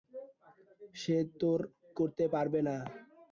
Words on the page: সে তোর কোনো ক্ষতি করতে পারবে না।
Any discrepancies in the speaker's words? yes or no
yes